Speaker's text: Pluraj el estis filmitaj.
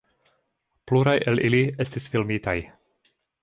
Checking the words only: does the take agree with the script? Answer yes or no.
no